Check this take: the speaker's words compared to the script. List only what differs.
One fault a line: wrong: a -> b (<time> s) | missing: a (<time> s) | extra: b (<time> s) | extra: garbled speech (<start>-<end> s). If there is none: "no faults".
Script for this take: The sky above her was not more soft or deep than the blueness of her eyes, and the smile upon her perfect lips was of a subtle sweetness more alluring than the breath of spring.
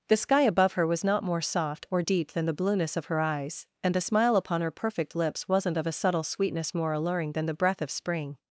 wrong: was -> wasn't (5.5 s)